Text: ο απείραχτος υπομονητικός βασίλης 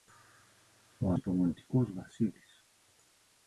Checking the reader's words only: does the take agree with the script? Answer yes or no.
no